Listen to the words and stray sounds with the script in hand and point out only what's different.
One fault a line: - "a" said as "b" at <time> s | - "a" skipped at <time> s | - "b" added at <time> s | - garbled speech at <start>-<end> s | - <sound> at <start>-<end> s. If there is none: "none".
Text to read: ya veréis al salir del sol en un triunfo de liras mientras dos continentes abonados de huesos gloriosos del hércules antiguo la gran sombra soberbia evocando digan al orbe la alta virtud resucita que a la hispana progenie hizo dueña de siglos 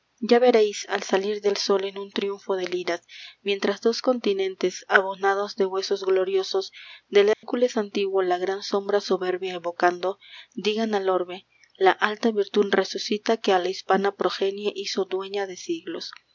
- dropout at 7.3-7.4 s